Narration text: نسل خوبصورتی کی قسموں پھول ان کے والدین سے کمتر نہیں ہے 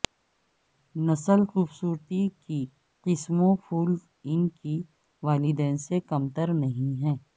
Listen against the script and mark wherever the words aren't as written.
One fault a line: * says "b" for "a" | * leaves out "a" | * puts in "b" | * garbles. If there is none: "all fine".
all fine